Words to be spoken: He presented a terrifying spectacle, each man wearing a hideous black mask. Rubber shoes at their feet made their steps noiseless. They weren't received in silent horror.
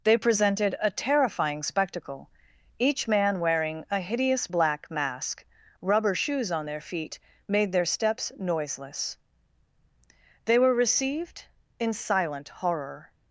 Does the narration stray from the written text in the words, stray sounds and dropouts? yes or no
yes